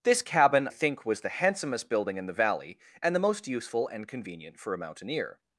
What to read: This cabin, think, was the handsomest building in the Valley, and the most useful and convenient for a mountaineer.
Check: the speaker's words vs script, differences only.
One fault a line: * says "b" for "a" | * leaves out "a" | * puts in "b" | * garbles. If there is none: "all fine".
all fine